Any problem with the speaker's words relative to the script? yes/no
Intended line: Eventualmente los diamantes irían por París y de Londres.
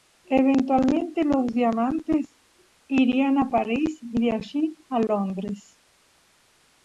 yes